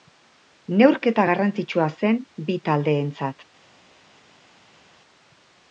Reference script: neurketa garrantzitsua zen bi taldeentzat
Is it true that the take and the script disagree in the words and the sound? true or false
false